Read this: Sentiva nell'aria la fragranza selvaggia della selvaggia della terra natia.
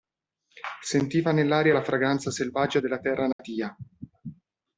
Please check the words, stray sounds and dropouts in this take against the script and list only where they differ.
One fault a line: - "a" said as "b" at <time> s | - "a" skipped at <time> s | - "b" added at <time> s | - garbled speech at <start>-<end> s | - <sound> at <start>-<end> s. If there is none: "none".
- "selvaggia della" skipped at 3.0 s
- dropout at 3.3-3.4 s